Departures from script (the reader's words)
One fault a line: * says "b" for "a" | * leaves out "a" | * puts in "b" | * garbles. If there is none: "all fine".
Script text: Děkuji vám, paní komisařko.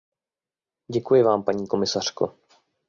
all fine